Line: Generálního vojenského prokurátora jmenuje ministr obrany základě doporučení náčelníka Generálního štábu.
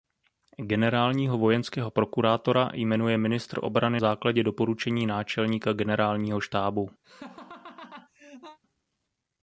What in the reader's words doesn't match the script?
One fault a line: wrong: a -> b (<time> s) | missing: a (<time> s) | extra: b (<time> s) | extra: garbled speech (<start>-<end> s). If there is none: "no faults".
no faults